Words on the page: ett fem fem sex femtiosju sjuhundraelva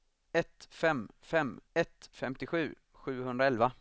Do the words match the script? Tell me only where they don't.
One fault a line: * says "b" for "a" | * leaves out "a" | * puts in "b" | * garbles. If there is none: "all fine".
* says "ett" for "sex"